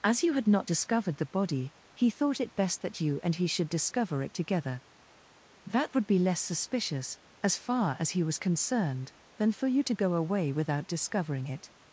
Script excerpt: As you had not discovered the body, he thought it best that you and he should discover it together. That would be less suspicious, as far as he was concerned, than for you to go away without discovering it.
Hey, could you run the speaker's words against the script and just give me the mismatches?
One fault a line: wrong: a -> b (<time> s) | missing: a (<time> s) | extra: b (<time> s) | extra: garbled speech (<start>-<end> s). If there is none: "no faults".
no faults